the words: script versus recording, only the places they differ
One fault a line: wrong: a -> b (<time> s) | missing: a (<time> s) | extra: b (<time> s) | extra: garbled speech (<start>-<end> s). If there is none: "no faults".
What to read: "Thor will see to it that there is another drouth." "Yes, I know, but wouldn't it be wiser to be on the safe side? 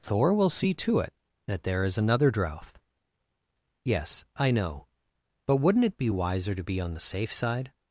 no faults